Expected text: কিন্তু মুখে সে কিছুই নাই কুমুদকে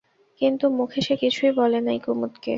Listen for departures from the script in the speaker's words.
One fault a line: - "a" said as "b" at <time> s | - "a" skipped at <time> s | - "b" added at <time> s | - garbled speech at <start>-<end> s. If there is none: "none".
- "বলে" added at 1.6 s